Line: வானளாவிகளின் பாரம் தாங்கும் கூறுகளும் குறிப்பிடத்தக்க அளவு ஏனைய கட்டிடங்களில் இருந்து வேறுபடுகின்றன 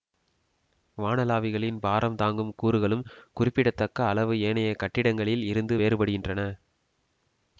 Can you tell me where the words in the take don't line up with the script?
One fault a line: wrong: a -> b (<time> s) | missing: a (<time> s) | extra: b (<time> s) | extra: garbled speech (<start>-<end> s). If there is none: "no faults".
no faults